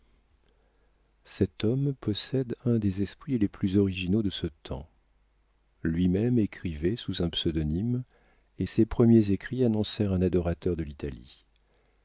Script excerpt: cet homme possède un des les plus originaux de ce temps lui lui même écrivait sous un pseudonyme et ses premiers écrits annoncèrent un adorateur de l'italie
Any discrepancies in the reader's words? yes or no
yes